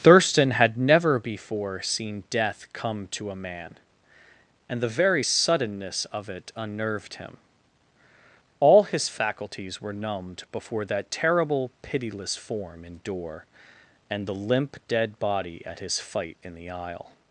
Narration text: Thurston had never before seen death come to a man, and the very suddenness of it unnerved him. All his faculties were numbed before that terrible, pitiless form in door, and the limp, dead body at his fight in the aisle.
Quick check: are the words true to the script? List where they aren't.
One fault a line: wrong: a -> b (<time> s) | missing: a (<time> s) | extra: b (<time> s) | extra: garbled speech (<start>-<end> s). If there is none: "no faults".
no faults